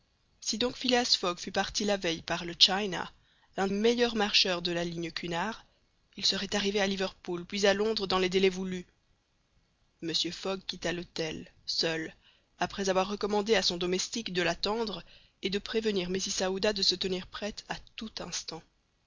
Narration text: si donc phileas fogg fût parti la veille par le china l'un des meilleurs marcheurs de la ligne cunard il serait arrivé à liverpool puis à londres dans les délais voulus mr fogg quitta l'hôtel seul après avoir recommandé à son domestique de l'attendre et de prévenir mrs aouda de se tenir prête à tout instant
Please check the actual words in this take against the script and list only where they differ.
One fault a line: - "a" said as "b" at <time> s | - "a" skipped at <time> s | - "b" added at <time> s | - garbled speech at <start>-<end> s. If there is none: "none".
- "des" skipped at 3.7 s